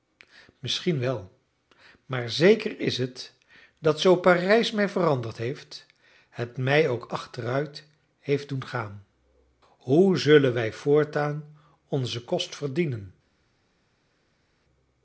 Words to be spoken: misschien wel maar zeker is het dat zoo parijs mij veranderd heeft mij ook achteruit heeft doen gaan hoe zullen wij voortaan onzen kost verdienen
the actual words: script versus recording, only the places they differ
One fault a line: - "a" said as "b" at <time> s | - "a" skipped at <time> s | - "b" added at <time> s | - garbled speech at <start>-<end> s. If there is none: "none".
- "het" added at 6.3 s